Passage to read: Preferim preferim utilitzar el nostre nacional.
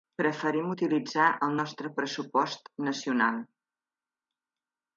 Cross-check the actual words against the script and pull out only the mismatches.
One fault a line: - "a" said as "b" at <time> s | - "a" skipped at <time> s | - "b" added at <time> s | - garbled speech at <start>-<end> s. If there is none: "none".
- "preferim" skipped at 0.7 s
- "pressupost" added at 2.0 s